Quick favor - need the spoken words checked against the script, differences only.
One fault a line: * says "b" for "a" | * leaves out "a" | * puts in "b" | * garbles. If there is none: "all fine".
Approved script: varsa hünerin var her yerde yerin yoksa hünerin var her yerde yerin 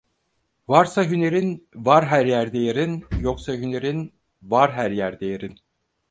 all fine